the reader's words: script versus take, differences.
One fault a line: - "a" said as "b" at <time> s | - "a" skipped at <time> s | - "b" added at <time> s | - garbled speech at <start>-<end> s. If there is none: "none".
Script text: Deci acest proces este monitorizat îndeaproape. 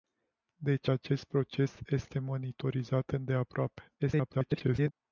- garbled speech at 4.0-4.9 s